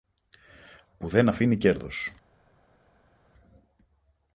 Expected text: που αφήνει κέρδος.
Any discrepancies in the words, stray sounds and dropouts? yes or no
yes